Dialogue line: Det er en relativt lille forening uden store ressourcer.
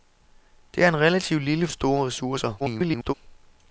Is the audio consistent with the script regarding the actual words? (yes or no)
no